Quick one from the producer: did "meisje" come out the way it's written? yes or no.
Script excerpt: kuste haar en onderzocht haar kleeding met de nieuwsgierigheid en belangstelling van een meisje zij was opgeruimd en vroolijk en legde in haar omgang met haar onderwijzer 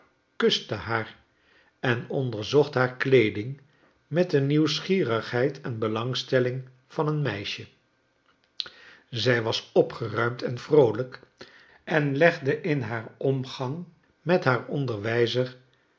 yes